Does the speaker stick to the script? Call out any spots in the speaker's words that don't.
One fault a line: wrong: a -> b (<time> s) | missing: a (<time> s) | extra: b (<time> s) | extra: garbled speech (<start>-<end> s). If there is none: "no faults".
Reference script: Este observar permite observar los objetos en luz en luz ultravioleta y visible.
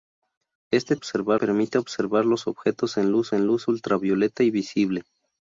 no faults